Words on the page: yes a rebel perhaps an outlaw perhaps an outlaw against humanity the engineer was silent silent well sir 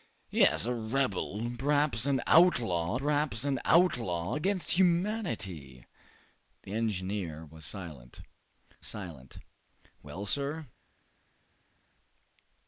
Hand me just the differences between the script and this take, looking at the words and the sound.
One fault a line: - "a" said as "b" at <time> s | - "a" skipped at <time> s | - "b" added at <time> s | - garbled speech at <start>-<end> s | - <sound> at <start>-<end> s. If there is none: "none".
none